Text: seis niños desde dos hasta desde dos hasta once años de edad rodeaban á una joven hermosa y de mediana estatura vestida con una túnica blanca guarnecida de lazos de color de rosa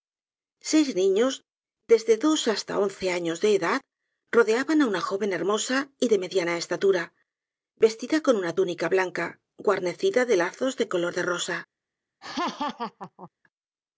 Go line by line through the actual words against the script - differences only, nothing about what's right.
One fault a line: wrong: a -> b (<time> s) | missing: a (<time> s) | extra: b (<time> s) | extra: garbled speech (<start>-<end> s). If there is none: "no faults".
missing: desde dos hasta (2.8 s)